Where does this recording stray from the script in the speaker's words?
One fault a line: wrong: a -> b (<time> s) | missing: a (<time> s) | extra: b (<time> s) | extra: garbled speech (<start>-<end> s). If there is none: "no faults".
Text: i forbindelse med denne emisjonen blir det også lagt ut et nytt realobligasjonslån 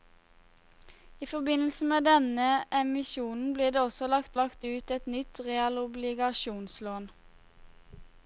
extra: lagt (4.4 s)